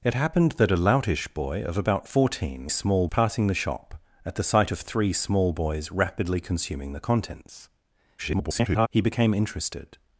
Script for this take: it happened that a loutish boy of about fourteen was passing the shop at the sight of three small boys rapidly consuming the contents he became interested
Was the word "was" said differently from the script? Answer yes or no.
yes